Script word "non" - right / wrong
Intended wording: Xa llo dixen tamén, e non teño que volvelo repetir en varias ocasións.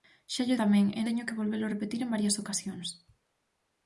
wrong